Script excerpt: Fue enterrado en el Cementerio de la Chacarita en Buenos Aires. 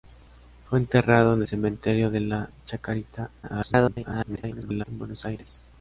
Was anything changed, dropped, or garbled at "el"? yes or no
yes